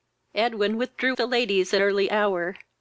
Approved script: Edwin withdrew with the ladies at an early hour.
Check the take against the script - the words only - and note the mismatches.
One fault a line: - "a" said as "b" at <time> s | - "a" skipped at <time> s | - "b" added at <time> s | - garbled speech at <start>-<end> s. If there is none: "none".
- "with" skipped at 1.1 s
- "an" skipped at 1.8 s